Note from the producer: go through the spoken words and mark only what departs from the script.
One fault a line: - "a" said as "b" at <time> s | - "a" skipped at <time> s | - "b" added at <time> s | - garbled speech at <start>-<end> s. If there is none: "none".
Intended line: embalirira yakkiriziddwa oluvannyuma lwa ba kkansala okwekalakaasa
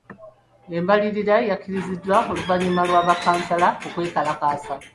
none